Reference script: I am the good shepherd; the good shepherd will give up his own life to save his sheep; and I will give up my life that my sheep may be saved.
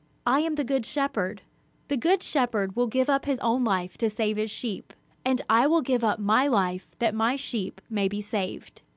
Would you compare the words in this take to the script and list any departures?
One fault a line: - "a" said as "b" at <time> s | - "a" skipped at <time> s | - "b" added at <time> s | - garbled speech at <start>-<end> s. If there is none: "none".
none